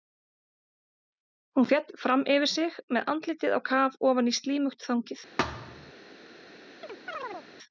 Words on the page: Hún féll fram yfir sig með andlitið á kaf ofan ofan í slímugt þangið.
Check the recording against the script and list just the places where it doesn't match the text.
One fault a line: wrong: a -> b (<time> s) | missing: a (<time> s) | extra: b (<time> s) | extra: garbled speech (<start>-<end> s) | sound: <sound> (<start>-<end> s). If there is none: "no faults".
missing: ofan (4.3 s)
sound: thud (5.4-5.9 s)
sound: chirp (6.8-7.5 s)